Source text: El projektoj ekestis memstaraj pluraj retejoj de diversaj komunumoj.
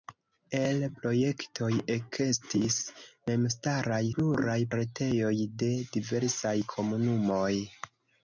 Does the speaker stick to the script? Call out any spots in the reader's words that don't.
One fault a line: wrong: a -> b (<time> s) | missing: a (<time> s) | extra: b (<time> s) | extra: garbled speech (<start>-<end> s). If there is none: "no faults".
no faults